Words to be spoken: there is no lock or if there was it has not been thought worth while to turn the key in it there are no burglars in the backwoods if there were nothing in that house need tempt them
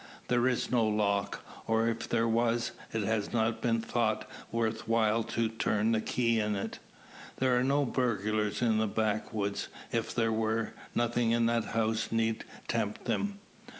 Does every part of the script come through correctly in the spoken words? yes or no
yes